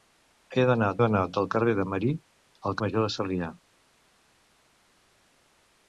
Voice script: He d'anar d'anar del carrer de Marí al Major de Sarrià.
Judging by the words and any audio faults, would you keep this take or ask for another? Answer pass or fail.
pass